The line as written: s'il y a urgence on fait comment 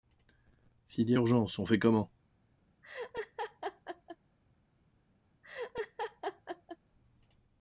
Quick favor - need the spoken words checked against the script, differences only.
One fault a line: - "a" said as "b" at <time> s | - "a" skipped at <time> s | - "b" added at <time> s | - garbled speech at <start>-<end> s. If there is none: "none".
none